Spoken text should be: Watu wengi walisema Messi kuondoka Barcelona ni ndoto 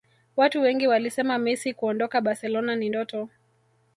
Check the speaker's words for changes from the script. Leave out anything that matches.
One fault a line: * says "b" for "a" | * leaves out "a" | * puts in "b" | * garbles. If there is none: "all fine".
all fine